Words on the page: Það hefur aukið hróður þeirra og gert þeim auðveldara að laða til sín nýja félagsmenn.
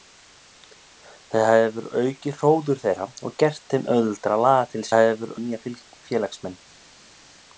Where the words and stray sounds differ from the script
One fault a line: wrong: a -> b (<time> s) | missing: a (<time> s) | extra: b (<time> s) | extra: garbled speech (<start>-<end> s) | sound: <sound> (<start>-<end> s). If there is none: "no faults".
wrong: sín -> hefur (4.9 s)